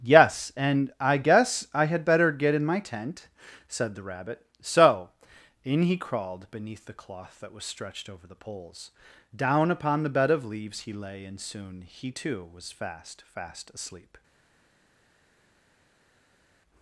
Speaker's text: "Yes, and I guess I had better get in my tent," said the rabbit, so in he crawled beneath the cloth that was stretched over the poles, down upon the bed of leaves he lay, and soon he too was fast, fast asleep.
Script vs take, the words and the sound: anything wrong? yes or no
no